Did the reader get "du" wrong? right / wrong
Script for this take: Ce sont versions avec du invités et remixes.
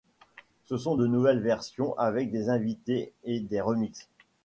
wrong